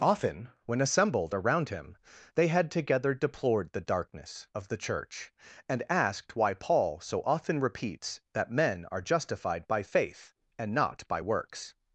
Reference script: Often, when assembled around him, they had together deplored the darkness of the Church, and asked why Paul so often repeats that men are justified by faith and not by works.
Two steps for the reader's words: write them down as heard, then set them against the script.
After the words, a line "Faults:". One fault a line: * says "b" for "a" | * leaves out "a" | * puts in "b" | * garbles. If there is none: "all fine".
Often, when assembled around him, they had together deplored the darkness of the Church, and asked why Paul so often repeats that men are justified by faith and not by works.
Faults:
all fine